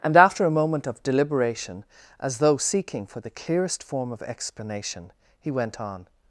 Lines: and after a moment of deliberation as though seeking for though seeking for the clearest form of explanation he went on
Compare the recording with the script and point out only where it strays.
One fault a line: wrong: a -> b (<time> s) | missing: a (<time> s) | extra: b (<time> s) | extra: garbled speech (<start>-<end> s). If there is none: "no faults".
missing: though seeking for (3.2 s)